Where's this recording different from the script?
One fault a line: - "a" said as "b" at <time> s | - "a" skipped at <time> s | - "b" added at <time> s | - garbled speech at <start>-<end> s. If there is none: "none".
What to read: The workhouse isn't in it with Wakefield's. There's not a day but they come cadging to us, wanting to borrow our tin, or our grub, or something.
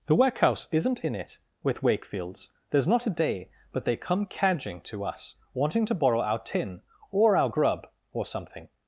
none